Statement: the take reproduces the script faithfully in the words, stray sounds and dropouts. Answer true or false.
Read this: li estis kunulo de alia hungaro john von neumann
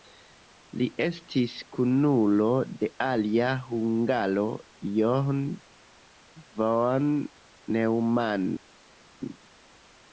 true